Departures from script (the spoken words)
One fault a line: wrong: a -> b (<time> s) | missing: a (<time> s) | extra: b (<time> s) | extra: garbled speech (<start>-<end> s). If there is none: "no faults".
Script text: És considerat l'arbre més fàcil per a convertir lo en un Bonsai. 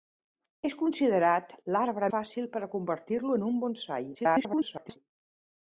missing: més (2.1 s)
extra: garbled speech (4.1-5.0 s)